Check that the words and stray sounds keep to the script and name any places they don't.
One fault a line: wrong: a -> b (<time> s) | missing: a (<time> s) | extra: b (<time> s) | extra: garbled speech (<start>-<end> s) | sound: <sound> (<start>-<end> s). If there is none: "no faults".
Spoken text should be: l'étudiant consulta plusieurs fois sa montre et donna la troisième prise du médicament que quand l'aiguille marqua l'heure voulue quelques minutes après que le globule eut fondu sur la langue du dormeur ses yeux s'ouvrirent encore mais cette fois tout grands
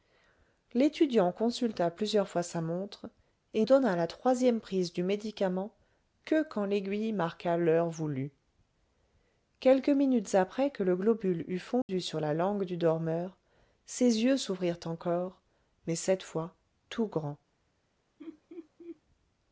sound: dropout (11.8-11.9 s)
sound: laugh (18.2-19.0 s)